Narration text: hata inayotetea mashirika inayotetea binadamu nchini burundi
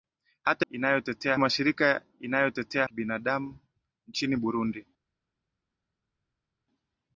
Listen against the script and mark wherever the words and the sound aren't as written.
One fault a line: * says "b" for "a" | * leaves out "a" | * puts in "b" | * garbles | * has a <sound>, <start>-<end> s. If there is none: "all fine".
all fine